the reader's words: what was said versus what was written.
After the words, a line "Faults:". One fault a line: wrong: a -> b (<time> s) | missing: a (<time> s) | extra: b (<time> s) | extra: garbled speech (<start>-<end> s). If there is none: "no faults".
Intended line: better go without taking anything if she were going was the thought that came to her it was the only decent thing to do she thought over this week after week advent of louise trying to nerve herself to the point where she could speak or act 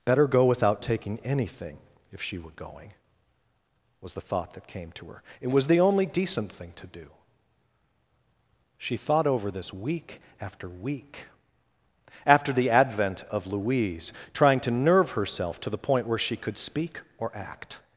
better go without taking anything if she were going was the thought that came to her it was the only decent thing to do she thought over this week after week after the advent of louise trying to nerve herself to the point where she could speak or act
Faults:
extra: after the (12.3 s)